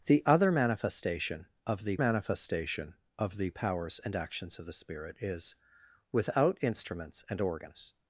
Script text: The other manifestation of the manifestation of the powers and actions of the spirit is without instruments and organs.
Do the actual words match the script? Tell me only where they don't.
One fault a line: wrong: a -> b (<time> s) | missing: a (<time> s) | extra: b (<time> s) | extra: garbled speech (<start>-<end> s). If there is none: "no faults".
no faults